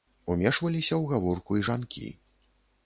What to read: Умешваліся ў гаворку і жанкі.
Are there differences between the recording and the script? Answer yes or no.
no